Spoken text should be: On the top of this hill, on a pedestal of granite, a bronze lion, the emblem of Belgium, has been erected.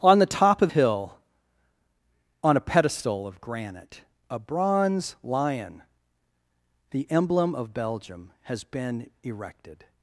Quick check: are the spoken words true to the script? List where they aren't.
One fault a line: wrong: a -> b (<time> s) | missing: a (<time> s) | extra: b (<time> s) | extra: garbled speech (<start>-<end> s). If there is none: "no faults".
missing: this (0.7 s)